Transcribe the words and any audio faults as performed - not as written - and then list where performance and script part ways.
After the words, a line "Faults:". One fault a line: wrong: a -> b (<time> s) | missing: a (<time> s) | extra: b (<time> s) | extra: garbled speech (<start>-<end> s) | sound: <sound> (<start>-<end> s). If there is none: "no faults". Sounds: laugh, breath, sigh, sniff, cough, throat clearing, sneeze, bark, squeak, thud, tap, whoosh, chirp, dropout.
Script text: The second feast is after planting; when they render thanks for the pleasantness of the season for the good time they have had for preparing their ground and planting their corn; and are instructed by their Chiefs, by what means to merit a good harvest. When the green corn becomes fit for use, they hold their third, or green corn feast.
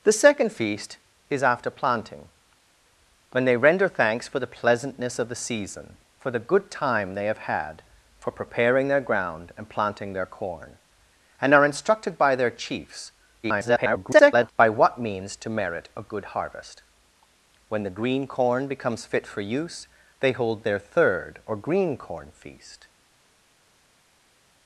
The second feast is after planting; when they render thanks for the pleasantness of the season for the good time they have had for preparing their ground and planting their corn; and are instructed by their Chiefs, [garbled] by what means to merit a good harvest. When the green corn becomes fit for use, they hold their third, or green corn feast.
Faults:
extra: garbled speech (13.4-14.5 s)